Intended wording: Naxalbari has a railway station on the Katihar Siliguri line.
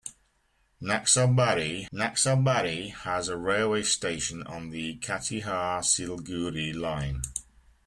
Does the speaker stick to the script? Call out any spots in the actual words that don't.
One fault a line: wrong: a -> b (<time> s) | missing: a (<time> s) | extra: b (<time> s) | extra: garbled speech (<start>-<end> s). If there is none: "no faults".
extra: naxalbari (1.9 s)